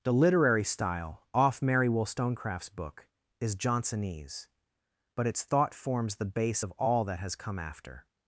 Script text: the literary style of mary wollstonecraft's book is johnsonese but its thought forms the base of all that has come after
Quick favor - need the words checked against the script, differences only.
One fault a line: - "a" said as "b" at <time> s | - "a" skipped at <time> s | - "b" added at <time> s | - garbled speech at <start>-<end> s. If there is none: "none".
- "of" said as "off" at 1.3 s